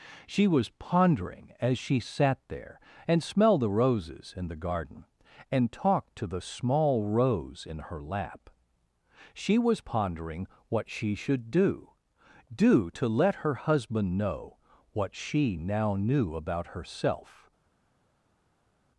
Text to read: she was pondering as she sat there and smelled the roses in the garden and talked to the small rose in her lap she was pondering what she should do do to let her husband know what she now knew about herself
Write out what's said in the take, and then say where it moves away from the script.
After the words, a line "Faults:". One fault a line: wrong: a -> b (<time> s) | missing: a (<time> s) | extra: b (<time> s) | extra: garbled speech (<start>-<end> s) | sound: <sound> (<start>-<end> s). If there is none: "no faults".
she was pondering as she sat there and smelled the roses in the garden and talked to the small rose in her lap she was pondering what she should do do to let her husband know what she now knew about herself
Faults:
no faults